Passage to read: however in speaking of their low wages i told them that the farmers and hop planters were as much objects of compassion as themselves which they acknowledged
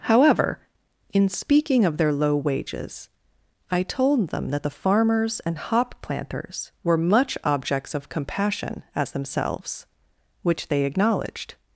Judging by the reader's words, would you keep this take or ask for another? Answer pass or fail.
fail